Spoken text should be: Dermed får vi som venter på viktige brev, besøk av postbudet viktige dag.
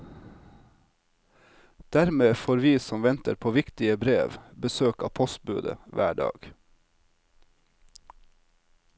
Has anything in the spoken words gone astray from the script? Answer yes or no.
yes